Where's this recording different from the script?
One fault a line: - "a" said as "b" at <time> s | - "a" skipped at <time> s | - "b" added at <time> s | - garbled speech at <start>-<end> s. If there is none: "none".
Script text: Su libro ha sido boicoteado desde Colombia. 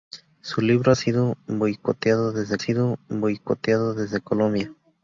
- "sido boicoteado desde" added at 2.6 s